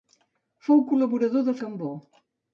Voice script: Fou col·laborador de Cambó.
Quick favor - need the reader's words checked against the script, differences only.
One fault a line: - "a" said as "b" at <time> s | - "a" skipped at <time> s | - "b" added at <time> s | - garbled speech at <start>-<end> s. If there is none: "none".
none